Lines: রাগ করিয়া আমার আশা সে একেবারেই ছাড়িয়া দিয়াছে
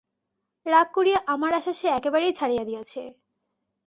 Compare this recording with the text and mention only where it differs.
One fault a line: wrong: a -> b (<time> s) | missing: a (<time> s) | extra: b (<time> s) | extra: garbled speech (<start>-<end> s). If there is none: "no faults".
no faults